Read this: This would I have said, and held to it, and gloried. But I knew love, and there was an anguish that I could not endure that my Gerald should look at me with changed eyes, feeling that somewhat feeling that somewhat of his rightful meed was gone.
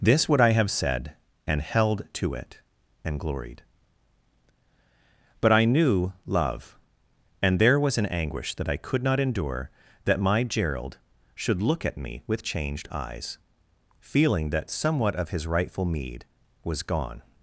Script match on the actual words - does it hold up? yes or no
no